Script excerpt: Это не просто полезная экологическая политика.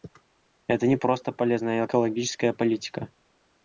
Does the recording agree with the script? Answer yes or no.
yes